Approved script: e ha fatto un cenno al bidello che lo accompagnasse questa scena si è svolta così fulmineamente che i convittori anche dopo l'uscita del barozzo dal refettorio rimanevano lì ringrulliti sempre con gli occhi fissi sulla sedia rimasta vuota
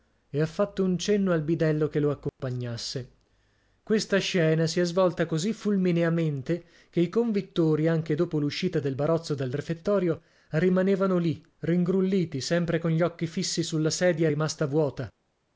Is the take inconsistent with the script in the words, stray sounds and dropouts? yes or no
yes